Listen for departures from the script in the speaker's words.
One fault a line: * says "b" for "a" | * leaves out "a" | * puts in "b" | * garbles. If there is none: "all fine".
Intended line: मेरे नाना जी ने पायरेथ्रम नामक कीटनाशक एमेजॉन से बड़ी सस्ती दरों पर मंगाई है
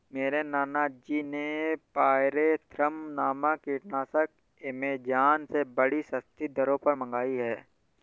all fine